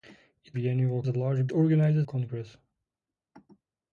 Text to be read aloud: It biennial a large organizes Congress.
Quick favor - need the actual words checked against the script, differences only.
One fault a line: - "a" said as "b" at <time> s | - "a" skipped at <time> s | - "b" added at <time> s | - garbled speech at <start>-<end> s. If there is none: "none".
none